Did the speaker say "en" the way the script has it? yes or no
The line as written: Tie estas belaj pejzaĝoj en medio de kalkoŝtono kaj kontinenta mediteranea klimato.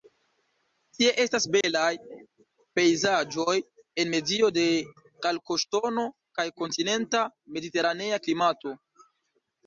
yes